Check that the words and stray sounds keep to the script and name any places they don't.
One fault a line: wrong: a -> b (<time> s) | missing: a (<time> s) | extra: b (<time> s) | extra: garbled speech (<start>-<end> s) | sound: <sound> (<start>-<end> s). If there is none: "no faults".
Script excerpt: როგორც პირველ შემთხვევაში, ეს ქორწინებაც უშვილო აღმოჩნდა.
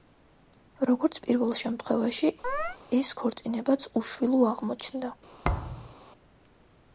sound: chirp (2.4-2.8 s)
sound: thud (5.4-5.9 s)